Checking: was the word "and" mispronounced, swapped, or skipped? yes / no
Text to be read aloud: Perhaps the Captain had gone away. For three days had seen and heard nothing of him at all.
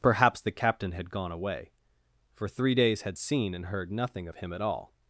no